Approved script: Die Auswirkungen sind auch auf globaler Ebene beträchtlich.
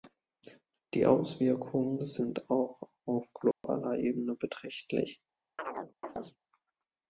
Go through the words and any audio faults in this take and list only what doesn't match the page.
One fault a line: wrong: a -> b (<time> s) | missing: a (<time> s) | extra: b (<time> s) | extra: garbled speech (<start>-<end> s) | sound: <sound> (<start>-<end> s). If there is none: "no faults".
sound: dropout (3.5-3.6 s)
sound: chirp (5.6-6.4 s)